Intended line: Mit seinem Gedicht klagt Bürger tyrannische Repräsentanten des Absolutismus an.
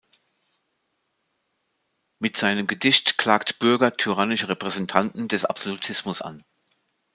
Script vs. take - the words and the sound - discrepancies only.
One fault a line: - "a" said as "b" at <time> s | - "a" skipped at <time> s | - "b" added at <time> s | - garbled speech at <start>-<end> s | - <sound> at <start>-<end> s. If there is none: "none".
none